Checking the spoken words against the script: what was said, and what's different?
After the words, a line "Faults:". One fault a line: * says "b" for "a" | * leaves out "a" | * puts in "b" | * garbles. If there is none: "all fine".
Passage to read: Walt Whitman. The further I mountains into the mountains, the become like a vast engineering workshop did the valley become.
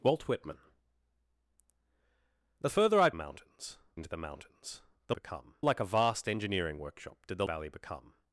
Walt Whitman. The further I mountains into the mountains, the become like a vast engineering workshop did the valley become.
Faults:
all fine